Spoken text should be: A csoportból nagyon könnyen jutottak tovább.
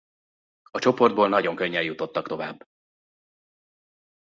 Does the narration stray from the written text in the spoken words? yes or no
no